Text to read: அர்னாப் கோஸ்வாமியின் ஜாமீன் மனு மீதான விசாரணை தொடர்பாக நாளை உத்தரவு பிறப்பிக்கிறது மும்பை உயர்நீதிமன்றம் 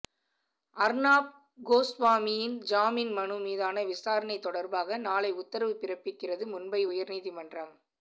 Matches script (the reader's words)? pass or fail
pass